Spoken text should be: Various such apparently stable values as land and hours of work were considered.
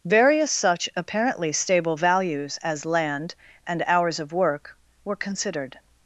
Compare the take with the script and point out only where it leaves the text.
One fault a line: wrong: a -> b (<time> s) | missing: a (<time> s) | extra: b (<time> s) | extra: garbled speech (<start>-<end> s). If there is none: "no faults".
no faults